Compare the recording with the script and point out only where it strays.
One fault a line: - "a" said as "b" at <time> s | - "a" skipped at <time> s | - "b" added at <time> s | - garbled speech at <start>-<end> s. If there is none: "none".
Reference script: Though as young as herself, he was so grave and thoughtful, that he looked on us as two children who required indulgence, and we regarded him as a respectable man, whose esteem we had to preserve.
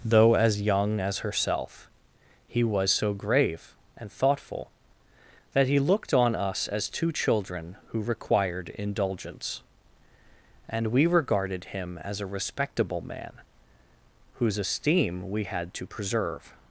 none